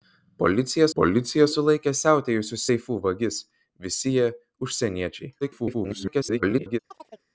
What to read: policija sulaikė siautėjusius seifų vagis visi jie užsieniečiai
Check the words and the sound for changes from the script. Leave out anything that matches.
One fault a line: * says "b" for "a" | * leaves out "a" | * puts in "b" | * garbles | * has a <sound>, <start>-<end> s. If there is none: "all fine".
* puts in "policija"
* garbles
* has a chirp, 6.9-7.3 s